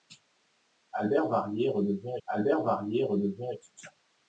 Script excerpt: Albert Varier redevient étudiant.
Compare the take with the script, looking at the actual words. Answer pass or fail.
fail